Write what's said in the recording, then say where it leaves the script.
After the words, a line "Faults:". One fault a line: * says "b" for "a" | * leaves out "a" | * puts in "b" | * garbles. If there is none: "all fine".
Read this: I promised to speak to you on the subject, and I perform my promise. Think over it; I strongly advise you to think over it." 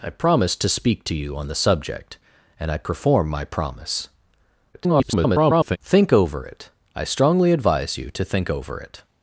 I promised to speak to you on the subject, and I perform my promise. [garbled] Think over it; I strongly advise you to think over it."
Faults:
* garbles